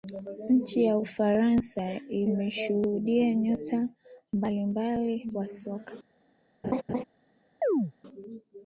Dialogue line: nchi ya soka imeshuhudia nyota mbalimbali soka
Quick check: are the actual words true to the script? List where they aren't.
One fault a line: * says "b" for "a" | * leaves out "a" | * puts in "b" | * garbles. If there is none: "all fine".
* says "ufaransa" for "soka"
* puts in "wa"